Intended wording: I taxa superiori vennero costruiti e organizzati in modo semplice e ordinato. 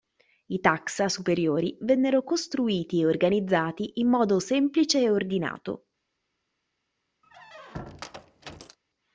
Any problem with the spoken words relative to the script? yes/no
no